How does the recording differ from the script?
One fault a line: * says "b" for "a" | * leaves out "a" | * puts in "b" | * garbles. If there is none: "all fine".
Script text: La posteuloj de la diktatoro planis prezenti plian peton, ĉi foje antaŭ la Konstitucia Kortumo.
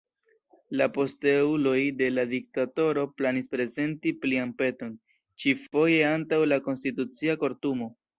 all fine